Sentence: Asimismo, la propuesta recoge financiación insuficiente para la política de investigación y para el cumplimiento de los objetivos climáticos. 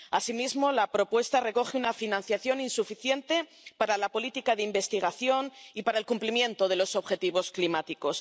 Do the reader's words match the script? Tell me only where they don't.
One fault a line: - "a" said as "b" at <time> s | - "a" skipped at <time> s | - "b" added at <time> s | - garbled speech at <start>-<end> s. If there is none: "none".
- "una" added at 1.8 s